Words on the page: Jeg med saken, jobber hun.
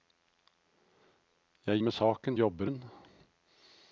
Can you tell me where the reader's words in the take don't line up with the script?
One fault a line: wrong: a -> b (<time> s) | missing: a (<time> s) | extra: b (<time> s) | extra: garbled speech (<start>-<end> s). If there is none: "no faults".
no faults